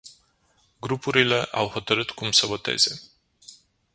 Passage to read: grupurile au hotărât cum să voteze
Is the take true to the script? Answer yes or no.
yes